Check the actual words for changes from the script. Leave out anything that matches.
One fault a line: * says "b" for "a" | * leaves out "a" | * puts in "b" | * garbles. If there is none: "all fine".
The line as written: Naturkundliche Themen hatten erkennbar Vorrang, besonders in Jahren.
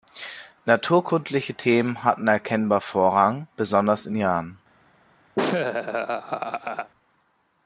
all fine